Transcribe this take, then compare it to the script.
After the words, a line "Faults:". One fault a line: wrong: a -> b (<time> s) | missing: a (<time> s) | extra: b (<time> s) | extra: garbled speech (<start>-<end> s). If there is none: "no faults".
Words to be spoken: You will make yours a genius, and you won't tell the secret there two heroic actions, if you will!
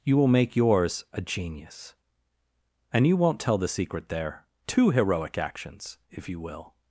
You will make yours a genius, and you won't tell the secret there two heroic actions, if you will!
Faults:
no faults